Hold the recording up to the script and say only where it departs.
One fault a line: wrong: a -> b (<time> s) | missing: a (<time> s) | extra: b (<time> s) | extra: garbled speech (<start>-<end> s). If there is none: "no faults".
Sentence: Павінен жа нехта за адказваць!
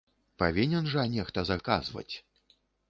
no faults